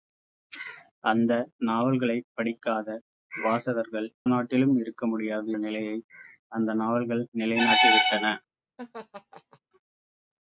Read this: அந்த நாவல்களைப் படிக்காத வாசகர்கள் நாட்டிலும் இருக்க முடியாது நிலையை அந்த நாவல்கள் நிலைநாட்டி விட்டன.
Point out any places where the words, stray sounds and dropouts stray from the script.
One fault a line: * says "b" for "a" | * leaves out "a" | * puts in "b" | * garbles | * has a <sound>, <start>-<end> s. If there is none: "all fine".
* has a laugh, 8.8-9.6 s